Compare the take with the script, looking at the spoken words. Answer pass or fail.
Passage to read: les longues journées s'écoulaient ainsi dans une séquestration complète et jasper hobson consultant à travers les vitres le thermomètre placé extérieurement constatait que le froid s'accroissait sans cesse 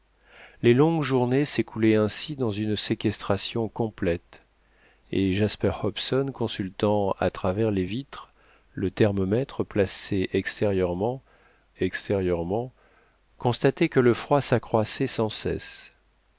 fail